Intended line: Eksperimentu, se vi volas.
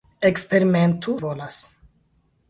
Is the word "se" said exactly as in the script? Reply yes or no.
no